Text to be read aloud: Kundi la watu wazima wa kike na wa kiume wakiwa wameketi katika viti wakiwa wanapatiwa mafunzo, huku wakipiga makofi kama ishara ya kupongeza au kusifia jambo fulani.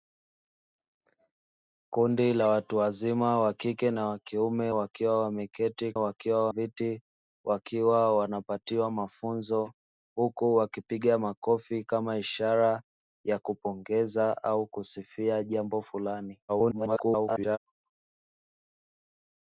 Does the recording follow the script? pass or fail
fail